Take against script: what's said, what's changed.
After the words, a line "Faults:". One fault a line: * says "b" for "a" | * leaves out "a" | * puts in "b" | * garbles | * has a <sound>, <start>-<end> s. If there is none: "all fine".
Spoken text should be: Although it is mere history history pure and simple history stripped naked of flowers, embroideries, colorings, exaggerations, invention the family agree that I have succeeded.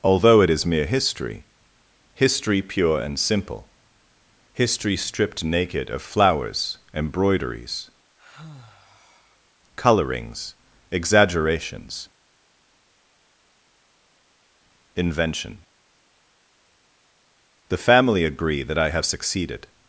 Although it is mere history history pure and simple history stripped naked of flowers, embroideries, colorings, exaggerations, invention the family agree that I have succeeded.
Faults:
* has a sigh, 8.2-9.5 s